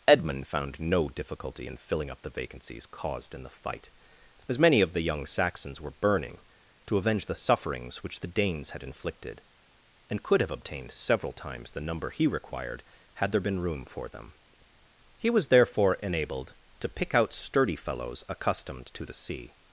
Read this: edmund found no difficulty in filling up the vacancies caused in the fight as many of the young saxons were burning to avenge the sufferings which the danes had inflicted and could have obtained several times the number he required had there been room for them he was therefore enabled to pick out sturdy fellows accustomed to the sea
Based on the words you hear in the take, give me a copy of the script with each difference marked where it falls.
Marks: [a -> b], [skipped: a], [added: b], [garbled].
edmund found no difficulty in filling up the vacancies caused in the fight as many of the young saxons were burning to avenge the sufferings which the danes had inflicted and could have obtained several times the number he required had there been room for them he was therefore enabled to pick out sturdy fellows accustomed to the sea